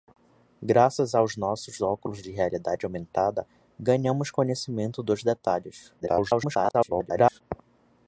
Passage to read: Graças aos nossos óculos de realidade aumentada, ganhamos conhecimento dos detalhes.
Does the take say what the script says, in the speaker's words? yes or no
no